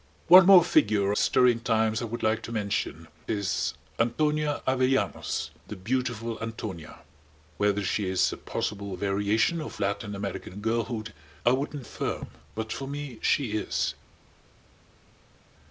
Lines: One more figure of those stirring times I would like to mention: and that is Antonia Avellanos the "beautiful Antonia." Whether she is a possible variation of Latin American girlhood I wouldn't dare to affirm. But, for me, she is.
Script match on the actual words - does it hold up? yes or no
no